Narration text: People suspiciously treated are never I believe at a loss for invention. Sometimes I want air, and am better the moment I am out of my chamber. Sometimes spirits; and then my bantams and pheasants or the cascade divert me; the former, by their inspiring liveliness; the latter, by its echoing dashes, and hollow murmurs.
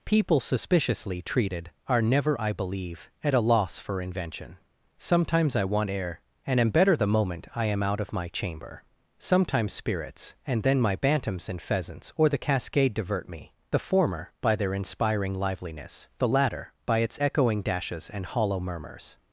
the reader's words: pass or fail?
pass